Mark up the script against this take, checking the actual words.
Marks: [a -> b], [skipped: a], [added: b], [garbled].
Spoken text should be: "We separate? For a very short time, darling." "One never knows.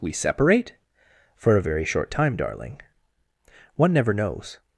"We separate? For a very short time, darling." "One never knows.